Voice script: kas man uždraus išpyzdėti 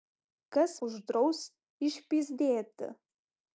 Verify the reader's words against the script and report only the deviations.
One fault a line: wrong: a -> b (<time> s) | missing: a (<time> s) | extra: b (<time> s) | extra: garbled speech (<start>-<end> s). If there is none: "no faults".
missing: man (0.7 s)